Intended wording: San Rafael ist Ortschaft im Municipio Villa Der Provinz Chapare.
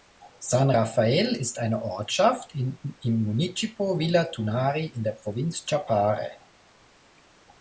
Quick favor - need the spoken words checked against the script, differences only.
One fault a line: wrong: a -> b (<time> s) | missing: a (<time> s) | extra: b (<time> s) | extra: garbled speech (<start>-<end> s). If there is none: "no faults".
extra: eine (1.6 s)
extra: Tunari in (4.2 s)